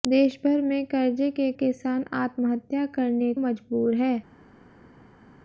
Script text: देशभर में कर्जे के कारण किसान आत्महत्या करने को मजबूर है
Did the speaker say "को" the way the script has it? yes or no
no